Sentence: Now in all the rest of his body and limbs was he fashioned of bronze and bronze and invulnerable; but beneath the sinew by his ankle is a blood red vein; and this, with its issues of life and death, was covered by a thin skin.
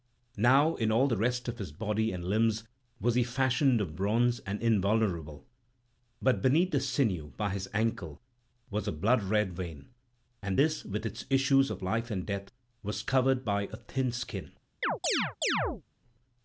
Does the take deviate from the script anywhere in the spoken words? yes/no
yes